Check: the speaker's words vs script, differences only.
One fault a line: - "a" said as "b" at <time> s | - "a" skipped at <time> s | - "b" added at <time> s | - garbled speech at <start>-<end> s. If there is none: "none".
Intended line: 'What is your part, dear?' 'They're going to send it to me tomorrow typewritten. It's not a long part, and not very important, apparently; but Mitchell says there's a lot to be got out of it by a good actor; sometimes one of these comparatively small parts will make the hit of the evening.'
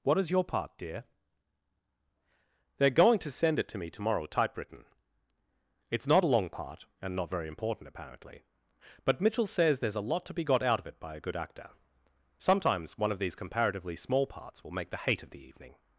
- "hit" said as "hate" at 15.0 s